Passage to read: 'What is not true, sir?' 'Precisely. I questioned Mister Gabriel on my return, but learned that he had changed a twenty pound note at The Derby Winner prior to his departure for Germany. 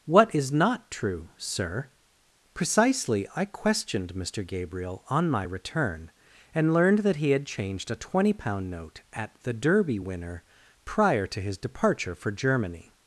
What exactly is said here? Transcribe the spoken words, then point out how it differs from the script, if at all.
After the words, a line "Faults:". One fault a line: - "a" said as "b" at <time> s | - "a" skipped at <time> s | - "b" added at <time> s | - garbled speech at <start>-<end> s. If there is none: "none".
'What is not true, sir?' 'Precisely. I questioned Mister Gabriel on my return, and learned that he had changed a twenty pound note at The Derby Winner prior to his departure for Germany.
Faults:
- "but" said as "and" at 6.5 s